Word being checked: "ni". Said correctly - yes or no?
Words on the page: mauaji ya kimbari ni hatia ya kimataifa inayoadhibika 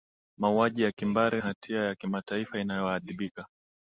no